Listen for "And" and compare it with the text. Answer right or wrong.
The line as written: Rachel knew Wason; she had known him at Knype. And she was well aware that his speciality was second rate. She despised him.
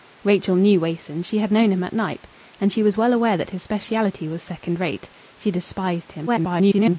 right